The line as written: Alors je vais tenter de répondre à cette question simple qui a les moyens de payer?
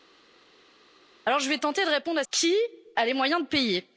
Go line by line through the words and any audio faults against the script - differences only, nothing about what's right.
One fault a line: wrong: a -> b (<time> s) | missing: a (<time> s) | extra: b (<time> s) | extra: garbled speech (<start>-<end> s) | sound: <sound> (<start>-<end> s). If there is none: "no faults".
missing: cette question simple (2.2 s)